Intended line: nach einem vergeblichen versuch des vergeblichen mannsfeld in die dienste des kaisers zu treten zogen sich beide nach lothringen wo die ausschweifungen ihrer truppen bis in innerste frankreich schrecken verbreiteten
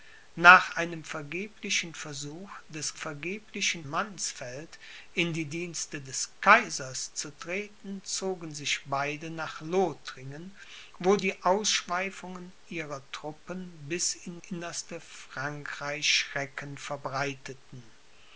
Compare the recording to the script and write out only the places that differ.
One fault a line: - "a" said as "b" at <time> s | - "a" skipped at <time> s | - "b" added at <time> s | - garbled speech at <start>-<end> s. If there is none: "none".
none